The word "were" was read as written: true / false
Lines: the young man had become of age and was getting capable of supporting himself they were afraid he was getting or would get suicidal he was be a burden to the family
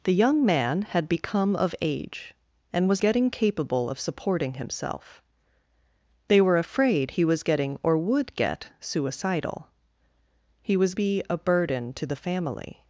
true